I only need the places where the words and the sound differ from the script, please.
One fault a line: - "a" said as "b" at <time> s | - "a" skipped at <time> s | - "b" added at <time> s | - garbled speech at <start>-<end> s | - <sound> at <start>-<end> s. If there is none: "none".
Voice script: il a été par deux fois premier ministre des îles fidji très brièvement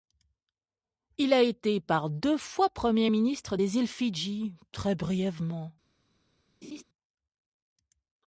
- laugh at 6.6-6.8 s